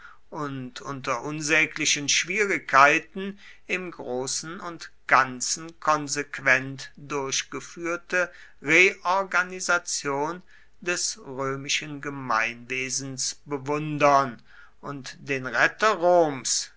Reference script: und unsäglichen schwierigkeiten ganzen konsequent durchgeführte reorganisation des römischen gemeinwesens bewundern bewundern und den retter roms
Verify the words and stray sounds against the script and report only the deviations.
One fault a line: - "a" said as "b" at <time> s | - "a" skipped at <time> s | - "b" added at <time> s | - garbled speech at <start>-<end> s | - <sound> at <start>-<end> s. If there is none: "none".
- "unter" added at 0.8 s
- "im großen und" added at 3.7 s
- "bewundern" skipped at 14.4 s